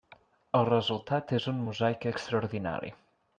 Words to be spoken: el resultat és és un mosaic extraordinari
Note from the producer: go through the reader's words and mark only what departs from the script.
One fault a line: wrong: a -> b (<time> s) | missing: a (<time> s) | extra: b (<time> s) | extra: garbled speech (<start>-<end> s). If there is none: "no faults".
missing: és (1.5 s)